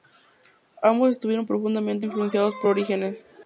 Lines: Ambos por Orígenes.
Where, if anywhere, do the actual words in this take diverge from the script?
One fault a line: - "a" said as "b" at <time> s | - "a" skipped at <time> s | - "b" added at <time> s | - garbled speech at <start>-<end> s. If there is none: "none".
- "estuvieron profundamente influenciados" added at 1.1 s